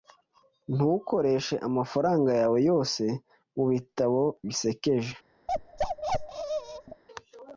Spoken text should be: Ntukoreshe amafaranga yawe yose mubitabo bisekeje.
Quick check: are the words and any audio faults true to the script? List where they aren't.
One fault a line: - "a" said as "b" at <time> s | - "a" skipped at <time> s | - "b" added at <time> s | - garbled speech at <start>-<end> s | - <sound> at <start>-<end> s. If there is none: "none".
- bark at 5.5-7.0 s